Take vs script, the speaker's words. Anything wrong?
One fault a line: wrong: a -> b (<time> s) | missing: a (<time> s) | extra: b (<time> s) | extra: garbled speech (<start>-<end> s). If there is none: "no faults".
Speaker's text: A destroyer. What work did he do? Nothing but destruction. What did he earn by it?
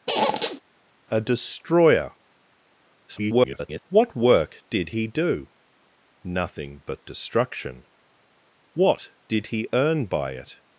extra: garbled speech (3.1-3.8 s)